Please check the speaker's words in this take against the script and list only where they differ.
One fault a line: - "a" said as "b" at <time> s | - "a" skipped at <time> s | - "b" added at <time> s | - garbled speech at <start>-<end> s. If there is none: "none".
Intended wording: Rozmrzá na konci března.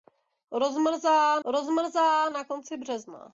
- "rozmrzá" added at 1.4 s